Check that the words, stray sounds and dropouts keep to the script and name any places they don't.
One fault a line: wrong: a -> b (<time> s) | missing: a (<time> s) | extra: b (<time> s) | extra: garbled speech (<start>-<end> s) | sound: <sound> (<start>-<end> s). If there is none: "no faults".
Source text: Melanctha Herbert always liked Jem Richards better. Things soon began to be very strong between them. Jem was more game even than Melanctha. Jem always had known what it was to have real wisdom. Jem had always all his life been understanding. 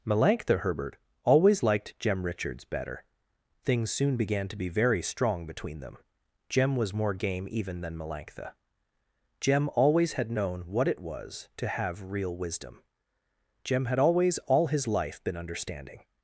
no faults